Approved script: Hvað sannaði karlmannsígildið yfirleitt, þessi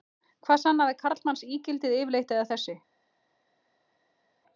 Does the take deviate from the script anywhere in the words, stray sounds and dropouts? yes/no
yes